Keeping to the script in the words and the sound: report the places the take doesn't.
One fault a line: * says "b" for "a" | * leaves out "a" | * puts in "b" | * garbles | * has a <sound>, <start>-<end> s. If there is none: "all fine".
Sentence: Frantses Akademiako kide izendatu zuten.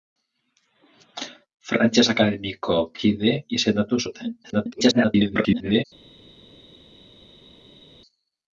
* garbles